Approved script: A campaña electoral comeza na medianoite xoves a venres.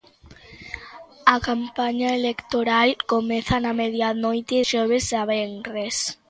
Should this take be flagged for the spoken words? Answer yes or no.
no